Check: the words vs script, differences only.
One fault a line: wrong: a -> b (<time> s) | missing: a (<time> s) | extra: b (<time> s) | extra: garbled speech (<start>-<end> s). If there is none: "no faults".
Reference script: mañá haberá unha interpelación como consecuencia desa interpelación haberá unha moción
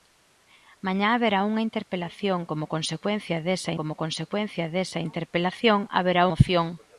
extra: como consecuencia desa (3.8 s)
missing: unha (6.2 s)